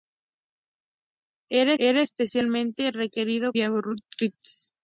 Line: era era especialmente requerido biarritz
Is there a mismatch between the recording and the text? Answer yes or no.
no